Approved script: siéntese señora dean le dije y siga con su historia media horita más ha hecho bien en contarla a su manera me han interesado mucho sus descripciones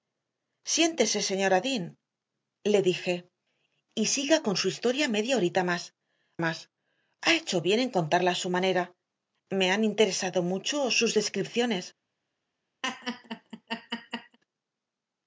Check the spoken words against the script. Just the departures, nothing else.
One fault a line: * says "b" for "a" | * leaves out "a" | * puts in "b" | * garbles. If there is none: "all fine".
* puts in "más"